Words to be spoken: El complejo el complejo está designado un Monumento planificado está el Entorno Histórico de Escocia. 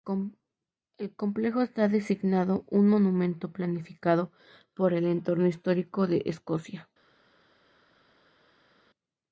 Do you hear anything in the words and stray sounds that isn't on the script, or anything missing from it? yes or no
yes